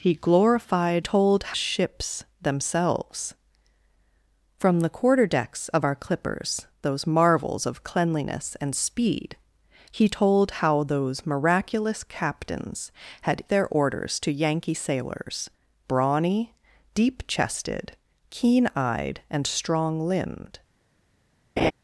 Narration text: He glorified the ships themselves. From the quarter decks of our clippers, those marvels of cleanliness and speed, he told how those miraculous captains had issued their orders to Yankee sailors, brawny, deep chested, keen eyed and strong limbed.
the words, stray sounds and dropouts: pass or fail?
fail